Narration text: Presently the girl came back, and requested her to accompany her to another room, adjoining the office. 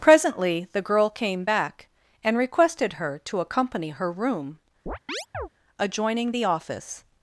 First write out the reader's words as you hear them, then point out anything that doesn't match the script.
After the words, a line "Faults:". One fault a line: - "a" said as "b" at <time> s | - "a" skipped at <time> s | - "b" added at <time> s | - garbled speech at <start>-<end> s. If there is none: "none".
Presently the girl came back, and requested her to accompany her room, adjoining the office.
Faults:
- "to another" skipped at 4.1 s